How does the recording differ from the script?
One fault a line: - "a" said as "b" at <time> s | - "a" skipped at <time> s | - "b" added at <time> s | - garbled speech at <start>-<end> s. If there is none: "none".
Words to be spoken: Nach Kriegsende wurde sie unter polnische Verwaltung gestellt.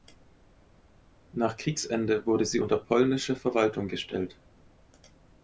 none